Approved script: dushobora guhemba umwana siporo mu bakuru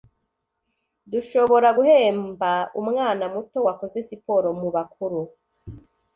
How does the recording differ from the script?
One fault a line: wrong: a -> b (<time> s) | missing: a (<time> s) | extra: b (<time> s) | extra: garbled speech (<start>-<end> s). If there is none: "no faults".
extra: muto wakoze (3.3 s)